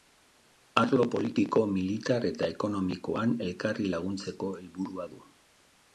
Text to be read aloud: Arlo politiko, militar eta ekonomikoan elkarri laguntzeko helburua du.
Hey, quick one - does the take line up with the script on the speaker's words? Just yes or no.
yes